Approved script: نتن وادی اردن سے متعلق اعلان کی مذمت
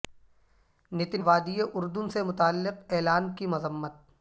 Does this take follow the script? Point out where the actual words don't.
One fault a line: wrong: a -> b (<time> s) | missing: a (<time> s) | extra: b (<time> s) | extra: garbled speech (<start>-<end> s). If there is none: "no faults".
no faults